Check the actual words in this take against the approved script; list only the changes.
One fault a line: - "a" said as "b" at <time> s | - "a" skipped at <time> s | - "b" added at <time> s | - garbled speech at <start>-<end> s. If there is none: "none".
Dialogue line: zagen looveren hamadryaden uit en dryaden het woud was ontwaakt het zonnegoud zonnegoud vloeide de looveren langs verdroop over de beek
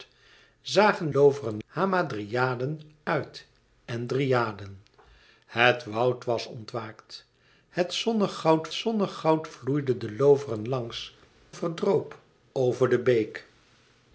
none